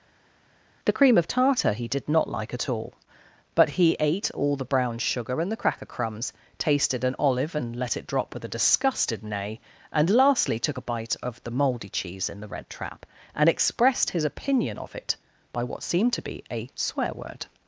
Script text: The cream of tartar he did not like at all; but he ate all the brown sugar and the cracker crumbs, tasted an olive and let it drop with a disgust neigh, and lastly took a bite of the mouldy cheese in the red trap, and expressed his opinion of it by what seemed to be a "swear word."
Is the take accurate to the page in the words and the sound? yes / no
no